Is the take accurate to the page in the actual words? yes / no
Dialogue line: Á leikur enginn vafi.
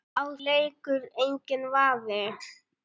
yes